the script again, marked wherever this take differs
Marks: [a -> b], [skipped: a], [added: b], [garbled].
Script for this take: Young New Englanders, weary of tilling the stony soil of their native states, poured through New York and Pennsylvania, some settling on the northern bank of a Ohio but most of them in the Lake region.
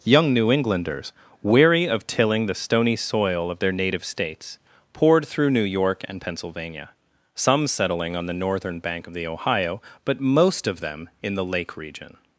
Young New Englanders, weary of tilling the stony soil of their native states, poured through New York and Pennsylvania, some settling on the northern bank of [a -> the] Ohio but most of them in the Lake region.